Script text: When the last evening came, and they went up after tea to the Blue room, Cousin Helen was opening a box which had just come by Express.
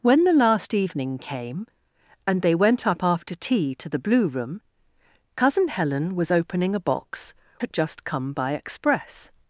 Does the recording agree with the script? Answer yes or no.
no